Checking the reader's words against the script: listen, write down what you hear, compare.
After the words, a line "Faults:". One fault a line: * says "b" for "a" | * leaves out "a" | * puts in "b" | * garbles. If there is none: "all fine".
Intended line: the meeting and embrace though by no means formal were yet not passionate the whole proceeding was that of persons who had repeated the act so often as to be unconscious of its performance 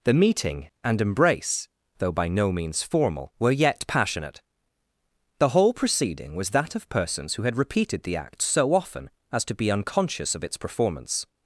the meeting and embrace though by no means formal were yet passionate the whole proceeding was that of persons who had repeated the act so often as to be unconscious of its performance
Faults:
* leaves out "not"